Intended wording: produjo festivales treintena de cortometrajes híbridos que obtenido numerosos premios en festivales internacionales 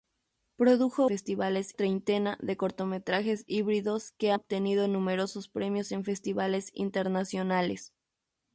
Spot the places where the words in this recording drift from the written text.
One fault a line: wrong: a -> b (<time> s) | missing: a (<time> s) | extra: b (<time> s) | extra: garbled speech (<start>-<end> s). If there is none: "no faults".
no faults